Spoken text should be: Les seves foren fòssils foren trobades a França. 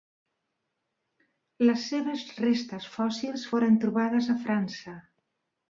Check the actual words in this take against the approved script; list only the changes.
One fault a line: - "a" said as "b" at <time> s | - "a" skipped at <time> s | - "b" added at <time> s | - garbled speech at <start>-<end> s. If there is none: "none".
- "foren" said as "restes" at 2.4 s